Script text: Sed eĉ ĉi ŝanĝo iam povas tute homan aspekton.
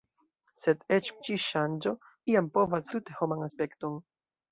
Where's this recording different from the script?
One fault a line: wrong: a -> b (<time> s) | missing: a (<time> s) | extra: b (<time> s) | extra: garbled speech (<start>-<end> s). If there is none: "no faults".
no faults